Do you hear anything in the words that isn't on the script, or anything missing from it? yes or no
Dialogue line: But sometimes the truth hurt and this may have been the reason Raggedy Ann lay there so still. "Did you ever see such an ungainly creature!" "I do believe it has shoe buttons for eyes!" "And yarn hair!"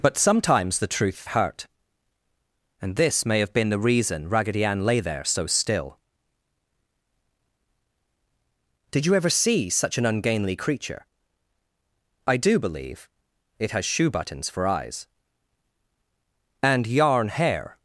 no